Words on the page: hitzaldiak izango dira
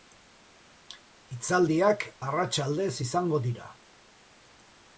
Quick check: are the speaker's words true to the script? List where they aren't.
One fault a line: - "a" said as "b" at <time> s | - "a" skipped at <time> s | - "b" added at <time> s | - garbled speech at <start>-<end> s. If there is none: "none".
- "arratsaldez" added at 2.3 s